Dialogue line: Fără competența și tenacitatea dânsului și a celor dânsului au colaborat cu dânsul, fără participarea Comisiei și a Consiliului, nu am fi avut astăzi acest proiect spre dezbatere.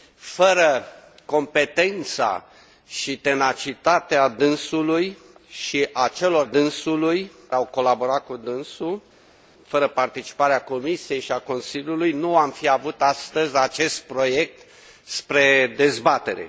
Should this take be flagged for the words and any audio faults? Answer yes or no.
no